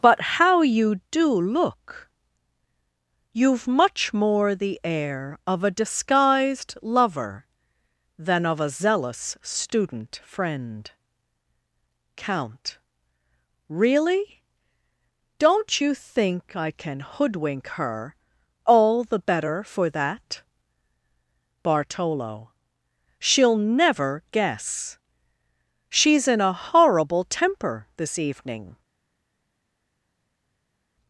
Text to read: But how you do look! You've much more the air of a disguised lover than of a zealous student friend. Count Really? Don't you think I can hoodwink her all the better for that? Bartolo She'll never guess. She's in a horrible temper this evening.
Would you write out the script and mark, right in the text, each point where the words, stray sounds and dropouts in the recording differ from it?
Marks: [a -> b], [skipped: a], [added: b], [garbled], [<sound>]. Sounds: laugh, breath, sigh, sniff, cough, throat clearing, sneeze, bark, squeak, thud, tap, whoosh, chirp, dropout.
But how you do look! You've much more the air of a disguised lover than of a zealous student friend. Count Really? Don't you think I can hoodwink her all the better for that? Bartolo She'll never guess. She's in a horrible temper this evening.